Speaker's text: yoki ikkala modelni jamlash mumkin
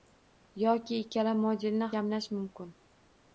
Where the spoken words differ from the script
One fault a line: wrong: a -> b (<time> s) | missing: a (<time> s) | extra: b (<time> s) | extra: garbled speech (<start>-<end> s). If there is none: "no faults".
no faults